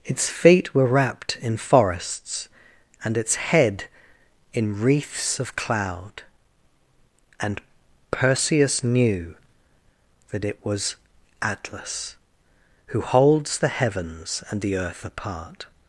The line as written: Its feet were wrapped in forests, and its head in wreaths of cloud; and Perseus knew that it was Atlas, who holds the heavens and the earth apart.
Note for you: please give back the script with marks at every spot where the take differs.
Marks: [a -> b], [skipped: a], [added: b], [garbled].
Its feet were wrapped in forests, and its head in wreaths of cloud; and Perseus knew that it was Atlas, who holds the heavens and the earth apart.